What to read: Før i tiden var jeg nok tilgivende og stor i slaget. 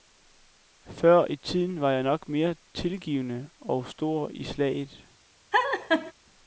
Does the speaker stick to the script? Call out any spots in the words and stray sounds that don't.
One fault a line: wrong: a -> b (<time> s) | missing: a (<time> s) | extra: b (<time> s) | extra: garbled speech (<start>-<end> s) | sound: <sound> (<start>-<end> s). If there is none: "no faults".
extra: mere (2.3 s)
sound: laugh (5.5-6.1 s)